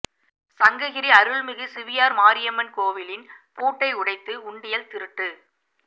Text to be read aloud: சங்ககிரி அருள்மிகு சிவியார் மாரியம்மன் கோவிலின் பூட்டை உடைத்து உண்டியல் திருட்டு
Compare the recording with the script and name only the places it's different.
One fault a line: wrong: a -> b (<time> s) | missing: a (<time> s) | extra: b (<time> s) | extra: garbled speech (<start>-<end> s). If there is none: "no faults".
no faults